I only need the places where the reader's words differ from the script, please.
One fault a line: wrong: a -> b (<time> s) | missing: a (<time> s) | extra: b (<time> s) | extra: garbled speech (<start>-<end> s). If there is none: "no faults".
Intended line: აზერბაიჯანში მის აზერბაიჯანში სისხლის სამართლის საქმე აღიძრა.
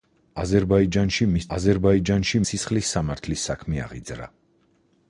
no faults